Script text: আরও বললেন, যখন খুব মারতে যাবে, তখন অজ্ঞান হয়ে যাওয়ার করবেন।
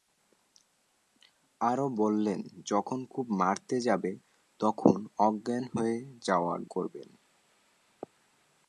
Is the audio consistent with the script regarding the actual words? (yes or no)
yes